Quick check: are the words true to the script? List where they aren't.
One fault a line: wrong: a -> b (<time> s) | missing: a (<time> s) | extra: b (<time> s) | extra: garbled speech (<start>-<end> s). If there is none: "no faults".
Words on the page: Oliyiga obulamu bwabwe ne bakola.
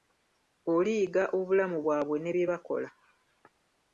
extra: bye (2.3 s)